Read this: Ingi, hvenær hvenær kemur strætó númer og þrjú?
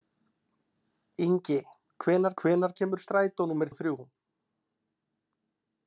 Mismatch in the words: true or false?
false